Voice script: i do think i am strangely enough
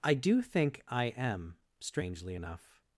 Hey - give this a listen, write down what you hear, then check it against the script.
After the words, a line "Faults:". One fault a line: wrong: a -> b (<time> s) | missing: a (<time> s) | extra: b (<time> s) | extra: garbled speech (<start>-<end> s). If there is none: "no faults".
i do think i am strangely enough
Faults:
no faults